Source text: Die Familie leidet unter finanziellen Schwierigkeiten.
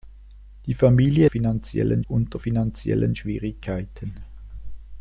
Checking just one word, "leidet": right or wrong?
wrong